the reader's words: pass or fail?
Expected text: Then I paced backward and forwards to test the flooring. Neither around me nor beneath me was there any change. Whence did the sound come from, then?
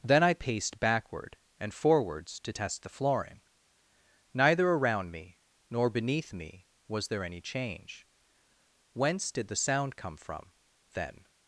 pass